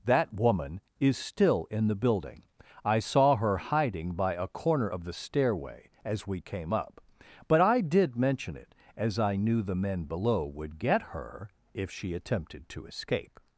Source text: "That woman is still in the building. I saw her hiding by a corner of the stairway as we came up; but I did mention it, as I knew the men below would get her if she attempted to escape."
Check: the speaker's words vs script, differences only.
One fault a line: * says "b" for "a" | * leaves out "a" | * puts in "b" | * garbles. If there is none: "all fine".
all fine